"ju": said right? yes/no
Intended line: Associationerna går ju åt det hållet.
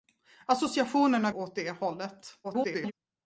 no